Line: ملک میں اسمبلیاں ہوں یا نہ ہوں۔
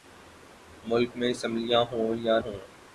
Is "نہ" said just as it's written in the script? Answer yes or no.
no